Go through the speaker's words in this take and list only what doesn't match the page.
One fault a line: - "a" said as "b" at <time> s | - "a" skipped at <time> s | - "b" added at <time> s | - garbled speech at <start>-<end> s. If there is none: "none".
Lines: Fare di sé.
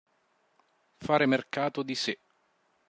- "mercato" added at 1.3 s